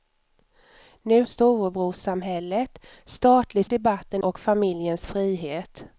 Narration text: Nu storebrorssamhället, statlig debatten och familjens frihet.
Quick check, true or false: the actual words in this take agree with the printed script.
true